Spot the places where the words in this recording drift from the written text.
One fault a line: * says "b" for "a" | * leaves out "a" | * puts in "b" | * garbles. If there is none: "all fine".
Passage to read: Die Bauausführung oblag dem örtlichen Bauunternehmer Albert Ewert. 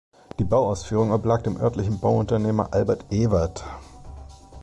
all fine